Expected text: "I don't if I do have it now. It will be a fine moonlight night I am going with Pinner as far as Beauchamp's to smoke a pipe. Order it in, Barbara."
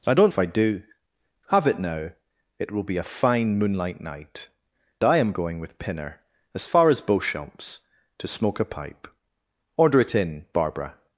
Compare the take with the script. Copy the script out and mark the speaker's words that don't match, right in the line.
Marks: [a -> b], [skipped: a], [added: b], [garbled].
"I don't if I do have it now. It will be a fine moonlight night I am going with Pinner as far as Beauchamp's to smoke a pipe. Order it in, Barbara."